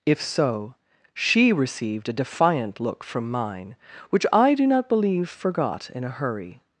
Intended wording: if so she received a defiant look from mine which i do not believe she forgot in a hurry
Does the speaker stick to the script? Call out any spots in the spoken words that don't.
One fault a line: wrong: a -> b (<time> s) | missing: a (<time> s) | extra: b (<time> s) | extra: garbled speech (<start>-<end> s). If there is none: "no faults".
missing: she (5.3 s)